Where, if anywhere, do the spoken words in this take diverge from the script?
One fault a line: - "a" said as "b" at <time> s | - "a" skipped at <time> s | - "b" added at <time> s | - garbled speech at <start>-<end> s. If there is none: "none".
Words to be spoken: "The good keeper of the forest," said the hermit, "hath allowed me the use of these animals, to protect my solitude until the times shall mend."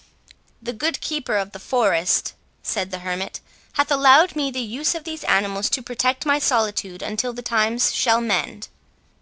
none